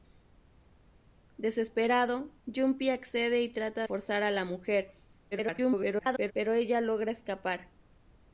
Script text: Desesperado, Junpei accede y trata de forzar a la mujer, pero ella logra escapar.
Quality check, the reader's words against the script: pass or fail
fail